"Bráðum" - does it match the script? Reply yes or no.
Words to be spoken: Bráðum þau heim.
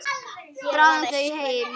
yes